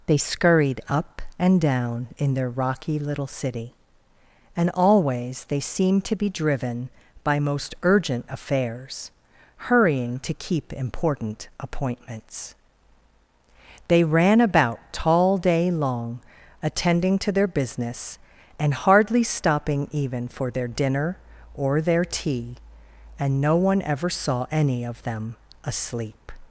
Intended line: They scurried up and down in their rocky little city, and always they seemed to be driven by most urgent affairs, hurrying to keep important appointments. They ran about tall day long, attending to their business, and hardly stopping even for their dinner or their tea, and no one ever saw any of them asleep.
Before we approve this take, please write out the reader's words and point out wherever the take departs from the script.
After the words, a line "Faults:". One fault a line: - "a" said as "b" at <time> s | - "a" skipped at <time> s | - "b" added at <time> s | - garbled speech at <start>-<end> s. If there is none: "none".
They scurried up and down in their rocky little city, and always they seemed to be driven by most urgent affairs, hurrying to keep important appointments. They ran about tall day long, attending to their business, and hardly stopping even for their dinner or their tea, and no one ever saw any of them asleep.
Faults:
none